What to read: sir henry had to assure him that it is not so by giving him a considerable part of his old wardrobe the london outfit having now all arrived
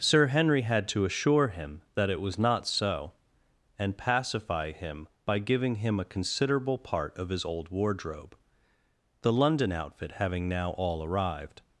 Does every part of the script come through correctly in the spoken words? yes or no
no